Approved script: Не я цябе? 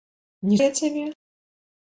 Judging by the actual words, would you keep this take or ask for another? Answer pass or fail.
pass